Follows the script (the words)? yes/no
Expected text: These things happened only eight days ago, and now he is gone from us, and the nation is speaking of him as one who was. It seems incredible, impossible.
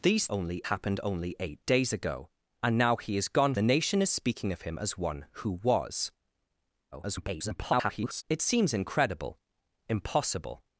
no